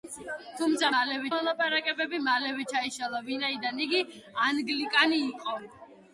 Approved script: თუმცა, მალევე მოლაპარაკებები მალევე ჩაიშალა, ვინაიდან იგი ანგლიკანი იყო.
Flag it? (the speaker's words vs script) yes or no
no